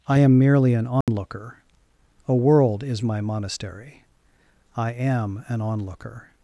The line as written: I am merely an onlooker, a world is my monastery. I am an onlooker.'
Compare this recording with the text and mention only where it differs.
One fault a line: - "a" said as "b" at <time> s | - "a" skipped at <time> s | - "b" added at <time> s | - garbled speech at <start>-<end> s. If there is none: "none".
none